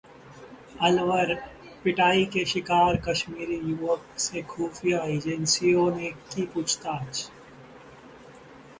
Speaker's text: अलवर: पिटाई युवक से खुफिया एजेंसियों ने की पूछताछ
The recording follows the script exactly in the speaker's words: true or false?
false